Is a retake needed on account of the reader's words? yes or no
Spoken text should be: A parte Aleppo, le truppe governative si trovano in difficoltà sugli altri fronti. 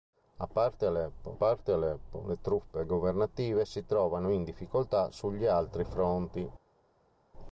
yes